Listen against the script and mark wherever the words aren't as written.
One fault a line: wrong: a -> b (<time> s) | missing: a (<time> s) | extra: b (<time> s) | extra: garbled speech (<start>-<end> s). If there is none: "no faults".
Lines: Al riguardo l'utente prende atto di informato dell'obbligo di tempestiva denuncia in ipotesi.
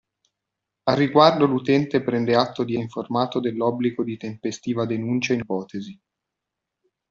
no faults